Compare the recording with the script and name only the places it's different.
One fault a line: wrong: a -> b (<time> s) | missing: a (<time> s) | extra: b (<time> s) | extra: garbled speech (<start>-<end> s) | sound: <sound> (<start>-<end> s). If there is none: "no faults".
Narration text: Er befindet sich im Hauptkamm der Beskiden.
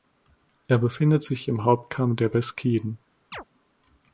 sound: chirp (3.3-3.4 s)